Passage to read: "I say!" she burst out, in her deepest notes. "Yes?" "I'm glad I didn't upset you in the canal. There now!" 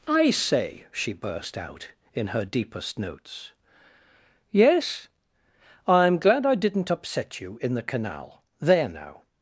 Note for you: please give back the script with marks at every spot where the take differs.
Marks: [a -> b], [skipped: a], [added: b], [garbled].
"I say!" she burst out, in her deepest notes. "Yes?" "I'm glad I didn't upset you in the canal. There now!"